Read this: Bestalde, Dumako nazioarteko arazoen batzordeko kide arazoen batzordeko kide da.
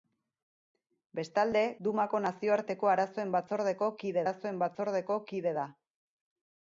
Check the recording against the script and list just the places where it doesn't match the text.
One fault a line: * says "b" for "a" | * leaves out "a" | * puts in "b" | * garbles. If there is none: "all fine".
all fine